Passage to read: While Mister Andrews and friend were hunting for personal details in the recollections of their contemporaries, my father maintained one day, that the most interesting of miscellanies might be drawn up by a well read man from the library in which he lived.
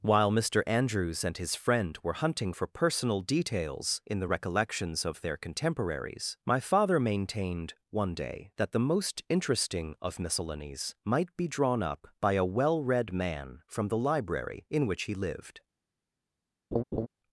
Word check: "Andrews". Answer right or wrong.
right